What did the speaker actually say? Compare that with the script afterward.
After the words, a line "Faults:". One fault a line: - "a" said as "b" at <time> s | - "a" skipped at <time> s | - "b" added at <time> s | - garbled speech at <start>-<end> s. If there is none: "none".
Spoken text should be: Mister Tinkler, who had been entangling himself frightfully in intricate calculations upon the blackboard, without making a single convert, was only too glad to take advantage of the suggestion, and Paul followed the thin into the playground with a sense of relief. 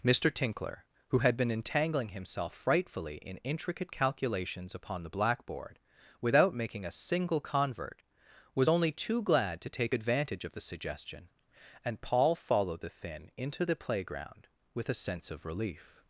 Mister Tinkler, who had been entangling himself frightfully in intricate calculations upon the blackboard, without making a single convert, was only too glad to take advantage of the suggestion, and Paul followed the thin into the playground with a sense of relief.
Faults:
none